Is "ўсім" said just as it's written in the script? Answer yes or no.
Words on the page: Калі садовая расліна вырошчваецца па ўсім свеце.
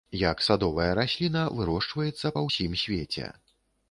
yes